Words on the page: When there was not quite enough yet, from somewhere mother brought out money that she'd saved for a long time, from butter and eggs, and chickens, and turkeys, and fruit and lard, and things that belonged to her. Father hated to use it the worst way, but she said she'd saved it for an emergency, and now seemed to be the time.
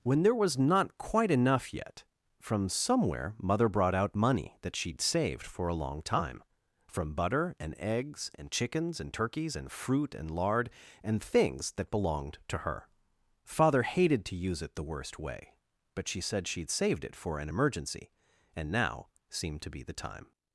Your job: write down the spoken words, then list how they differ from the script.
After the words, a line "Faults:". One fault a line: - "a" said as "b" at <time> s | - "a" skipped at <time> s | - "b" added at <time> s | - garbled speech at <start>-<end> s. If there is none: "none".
When there was not quite enough yet, from somewhere mother brought out money that she'd saved for a long time, from butter and eggs, and chickens, and turkeys, and fruit and lard, and things that belonged to her. Father hated to use it the worst way, but she said she'd saved it for an emergency, and now seemed to be the time.
Faults:
none